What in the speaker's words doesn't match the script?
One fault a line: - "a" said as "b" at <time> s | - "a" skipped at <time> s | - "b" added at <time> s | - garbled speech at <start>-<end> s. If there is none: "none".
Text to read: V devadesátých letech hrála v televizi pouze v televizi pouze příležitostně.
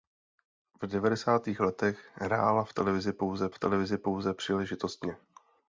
none